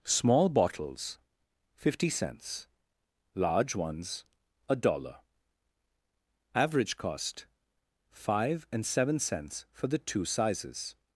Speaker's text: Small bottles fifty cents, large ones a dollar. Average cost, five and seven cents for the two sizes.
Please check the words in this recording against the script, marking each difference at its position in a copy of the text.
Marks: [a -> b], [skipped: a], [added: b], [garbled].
Small bottles fifty cents, large ones a dollar. Average cost, five and seven cents for the two sizes.